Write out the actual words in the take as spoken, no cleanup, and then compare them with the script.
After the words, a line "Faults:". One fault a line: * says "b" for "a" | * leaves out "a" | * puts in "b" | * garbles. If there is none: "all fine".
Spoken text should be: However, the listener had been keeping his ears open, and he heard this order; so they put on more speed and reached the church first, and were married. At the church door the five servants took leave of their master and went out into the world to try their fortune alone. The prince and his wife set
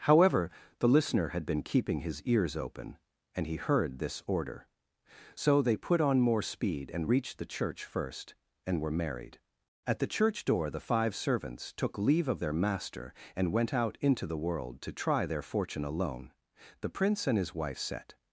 However, the listener had been keeping his ears open, and he heard this order; so they put on more speed and reached the church first, and were married. At the church door the five servants took leave of their master and went out into the world to try their fortune alone. The prince and his wife set
Faults:
all fine